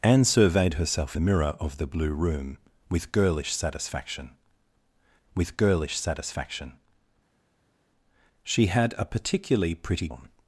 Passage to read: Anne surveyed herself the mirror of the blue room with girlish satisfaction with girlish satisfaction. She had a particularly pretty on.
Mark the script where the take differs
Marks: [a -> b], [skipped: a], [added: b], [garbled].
Anne surveyed herself the mirror of the blue room with girlish satisfaction with girlish satisfaction. She had a particularly pretty on.